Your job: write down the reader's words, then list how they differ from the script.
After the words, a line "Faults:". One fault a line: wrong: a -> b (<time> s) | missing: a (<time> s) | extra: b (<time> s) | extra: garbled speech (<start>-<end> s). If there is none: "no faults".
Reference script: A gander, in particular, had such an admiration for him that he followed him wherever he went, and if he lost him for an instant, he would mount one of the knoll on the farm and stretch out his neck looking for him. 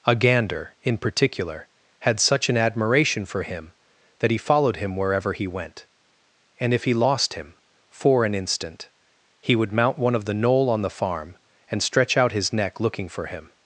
A gander, in particular, had such an admiration for him that he followed him wherever he went, and if he lost him for an instant, he would mount one of the knoll on the farm and stretch out his neck looking for him.
Faults:
no faults